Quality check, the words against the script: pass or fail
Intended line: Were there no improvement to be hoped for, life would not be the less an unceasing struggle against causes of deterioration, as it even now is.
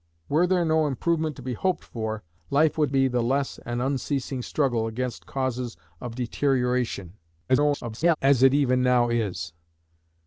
fail